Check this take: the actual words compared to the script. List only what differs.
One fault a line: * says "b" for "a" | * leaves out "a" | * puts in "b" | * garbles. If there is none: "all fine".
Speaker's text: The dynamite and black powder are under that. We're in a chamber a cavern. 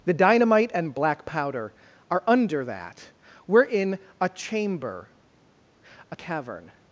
all fine